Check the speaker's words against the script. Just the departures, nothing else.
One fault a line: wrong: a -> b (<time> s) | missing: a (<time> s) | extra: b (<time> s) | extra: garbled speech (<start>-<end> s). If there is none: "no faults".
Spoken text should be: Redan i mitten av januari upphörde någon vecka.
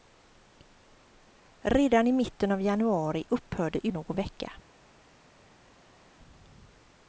no faults